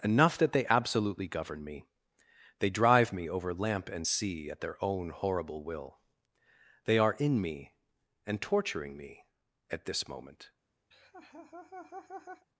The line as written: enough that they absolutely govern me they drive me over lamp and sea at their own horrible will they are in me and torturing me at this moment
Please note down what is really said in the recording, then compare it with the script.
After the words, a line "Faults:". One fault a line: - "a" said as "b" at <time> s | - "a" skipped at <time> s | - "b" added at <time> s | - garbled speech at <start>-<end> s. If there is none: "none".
enough that they absolutely govern me they drive me over lamp and sea at their own horrible will they are in me and torturing me at this moment
Faults:
none